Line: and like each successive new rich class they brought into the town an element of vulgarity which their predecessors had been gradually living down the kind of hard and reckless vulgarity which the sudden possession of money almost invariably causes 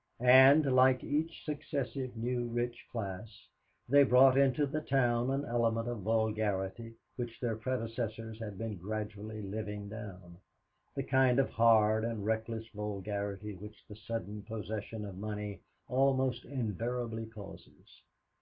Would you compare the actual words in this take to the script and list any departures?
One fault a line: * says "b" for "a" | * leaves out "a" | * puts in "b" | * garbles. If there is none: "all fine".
all fine